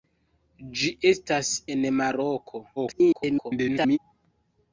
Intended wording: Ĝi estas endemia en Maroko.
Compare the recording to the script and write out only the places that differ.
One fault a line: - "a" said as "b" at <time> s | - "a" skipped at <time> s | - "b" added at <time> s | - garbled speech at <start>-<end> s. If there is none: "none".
- "endemia" skipped at 1.5 s
- garbled speech at 2.8-4.0 s